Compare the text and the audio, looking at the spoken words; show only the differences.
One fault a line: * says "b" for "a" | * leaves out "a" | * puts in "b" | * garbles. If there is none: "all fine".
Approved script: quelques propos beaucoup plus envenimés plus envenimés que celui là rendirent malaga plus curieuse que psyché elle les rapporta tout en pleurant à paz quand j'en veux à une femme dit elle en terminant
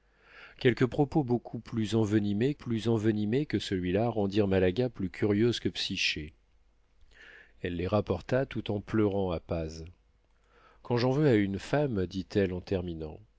all fine